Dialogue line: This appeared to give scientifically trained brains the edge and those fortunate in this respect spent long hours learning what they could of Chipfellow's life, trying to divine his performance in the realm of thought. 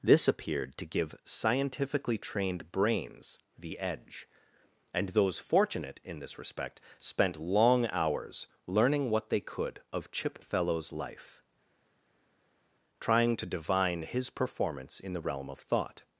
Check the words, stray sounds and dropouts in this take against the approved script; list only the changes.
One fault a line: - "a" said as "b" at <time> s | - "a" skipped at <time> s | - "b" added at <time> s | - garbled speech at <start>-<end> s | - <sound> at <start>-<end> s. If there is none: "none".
none